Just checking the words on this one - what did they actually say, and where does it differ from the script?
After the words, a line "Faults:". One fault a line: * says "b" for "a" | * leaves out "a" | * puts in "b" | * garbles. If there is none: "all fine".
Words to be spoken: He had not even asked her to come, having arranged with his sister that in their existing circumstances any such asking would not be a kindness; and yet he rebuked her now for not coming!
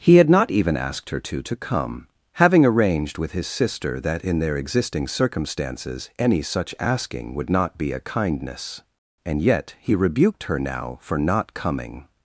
He had not even asked her to to come, having arranged with his sister that in their existing circumstances any such asking would not be a kindness; and yet he rebuked her now for not coming!
Faults:
* puts in "to"